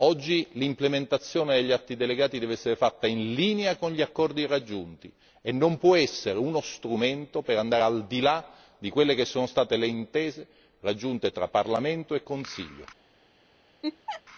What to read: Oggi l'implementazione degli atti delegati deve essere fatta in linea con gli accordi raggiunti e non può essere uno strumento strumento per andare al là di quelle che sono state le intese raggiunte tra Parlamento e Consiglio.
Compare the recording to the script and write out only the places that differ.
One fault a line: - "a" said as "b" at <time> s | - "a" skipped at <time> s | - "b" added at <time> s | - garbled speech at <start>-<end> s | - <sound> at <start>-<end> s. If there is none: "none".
- "strumento" skipped at 7.4 s
- "di" added at 8.1 s
- laugh at 13.8-14.2 s